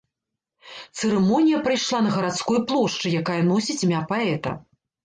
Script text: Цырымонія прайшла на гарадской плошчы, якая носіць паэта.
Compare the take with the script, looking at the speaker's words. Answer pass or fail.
fail